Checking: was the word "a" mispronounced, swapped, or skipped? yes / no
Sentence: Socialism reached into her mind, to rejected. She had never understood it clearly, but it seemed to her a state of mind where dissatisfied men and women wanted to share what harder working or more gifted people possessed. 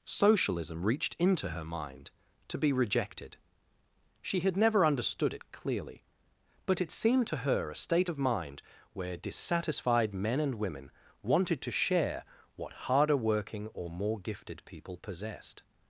no